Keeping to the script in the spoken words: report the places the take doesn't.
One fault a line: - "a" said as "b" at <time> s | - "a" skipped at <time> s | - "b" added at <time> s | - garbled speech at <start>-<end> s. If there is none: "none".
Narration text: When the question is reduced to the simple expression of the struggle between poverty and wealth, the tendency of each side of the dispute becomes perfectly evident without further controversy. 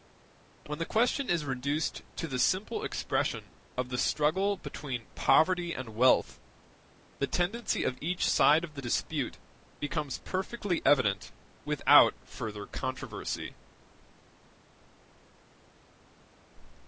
none